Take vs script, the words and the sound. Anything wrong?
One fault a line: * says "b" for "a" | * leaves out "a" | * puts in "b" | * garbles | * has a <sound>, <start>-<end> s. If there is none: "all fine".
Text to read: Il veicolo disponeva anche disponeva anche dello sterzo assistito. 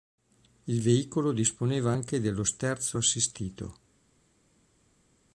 * leaves out "disponeva anche"